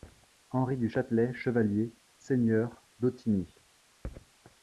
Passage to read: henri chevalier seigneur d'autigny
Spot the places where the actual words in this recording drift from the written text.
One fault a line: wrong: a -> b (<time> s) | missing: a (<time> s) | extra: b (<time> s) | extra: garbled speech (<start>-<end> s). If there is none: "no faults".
extra: du châtelet (0.8 s)